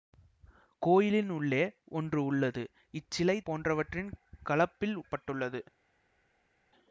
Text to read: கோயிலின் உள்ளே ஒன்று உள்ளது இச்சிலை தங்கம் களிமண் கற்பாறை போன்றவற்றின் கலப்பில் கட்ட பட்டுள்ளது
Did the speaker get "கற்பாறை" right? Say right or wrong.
wrong